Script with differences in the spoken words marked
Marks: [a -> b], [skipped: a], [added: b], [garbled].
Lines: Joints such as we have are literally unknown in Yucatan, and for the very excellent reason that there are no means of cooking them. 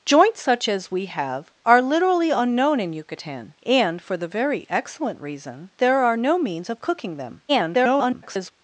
Joints such as we have are literally unknown in Yucatan, and for the very excellent reason [skipped: that] there are no means of cooking them. [garbled]